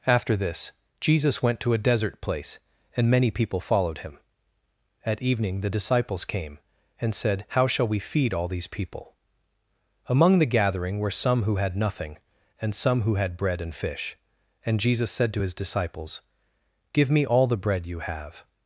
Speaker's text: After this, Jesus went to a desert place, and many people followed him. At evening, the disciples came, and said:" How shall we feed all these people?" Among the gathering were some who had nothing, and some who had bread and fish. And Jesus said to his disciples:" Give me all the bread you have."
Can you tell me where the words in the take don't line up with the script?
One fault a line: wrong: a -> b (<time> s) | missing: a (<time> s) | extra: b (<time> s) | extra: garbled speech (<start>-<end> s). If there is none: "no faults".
no faults